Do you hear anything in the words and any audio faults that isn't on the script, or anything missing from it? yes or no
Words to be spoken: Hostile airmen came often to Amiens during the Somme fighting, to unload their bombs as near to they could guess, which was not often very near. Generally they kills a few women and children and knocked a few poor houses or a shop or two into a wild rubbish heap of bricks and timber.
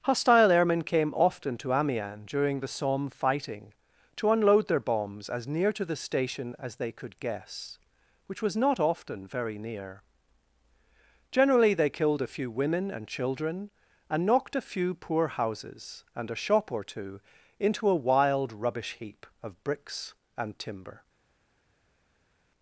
yes